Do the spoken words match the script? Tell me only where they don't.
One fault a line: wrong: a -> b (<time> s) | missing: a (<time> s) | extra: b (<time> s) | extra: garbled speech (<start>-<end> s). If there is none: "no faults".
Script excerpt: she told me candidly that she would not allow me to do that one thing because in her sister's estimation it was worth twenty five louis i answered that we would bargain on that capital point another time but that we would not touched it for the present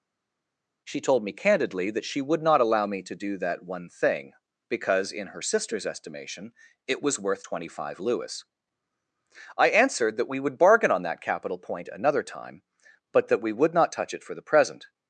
wrong: touched -> touch (13.9 s)